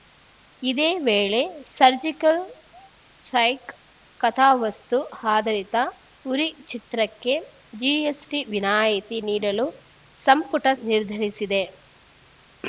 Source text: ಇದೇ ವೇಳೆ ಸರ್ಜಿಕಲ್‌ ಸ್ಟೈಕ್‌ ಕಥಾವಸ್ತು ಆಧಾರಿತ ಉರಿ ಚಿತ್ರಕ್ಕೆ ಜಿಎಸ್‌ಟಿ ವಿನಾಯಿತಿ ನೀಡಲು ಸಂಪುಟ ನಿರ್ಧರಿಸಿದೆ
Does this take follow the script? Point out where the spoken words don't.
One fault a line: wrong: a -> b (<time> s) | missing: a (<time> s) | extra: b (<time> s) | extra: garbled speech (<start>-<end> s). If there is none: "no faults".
no faults